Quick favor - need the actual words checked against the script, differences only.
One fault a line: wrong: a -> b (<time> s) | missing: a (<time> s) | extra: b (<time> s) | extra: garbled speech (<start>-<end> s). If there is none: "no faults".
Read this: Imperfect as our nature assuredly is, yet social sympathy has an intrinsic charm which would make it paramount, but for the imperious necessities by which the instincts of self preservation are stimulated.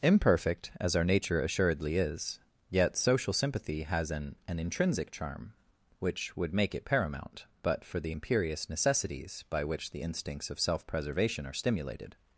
extra: an (4.5 s)